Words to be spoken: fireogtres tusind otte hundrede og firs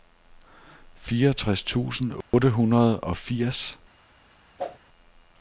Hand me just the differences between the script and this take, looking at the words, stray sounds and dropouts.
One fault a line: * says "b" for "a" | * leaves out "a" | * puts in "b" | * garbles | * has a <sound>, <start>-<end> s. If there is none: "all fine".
* has a dropout, 2.2-2.3 s
* has a whoosh, 4.6-4.8 s